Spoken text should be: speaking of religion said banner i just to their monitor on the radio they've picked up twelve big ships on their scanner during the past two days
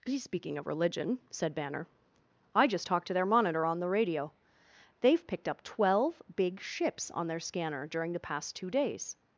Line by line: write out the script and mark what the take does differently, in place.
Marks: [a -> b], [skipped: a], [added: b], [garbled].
speaking of religion said banner i just [added: talked] to their monitor on the radio they've picked up twelve big ships on their scanner during the past two days